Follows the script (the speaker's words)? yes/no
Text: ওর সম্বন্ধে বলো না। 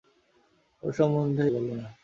yes